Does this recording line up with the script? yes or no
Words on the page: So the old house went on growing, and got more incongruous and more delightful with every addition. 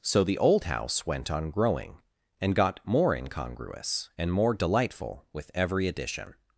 yes